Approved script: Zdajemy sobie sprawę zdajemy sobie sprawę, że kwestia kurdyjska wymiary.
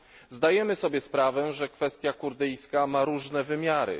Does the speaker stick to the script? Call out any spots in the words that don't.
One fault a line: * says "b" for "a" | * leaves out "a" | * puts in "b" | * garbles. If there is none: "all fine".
* leaves out "zdajemy sobie sprawę"
* puts in "ma różne"